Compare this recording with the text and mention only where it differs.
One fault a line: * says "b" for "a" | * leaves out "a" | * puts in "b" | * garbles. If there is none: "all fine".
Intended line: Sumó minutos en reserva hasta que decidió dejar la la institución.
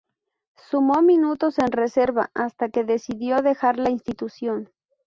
* leaves out "la"